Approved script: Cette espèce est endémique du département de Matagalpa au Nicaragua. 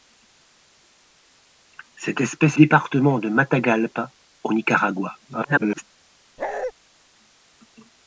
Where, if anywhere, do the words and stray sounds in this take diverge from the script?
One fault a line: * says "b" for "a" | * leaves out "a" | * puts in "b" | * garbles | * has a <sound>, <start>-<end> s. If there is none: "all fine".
* leaves out "est endémique du"
* garbles
* has a bark, 6.4-6.7 s